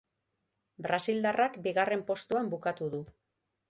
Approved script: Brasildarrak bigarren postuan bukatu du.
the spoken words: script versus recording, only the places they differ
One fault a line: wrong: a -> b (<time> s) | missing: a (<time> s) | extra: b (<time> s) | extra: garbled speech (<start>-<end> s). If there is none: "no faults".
no faults